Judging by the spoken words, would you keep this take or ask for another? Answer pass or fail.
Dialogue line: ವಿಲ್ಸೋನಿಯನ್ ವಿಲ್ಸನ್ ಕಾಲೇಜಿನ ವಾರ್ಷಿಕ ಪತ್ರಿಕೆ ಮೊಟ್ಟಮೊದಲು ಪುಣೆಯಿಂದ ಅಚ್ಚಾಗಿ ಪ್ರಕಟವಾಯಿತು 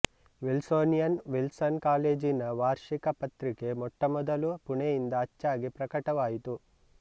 pass